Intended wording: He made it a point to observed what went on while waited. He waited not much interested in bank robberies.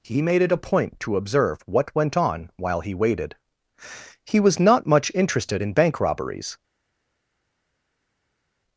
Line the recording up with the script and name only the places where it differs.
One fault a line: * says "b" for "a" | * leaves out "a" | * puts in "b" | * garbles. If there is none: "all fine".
* says "observe" for "observed"
* puts in "he"
* says "was" for "waited"